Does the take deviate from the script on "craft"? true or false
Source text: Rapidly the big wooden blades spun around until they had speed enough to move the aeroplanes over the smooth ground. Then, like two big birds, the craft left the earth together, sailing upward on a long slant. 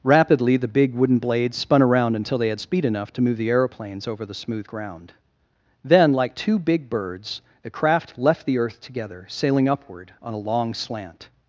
false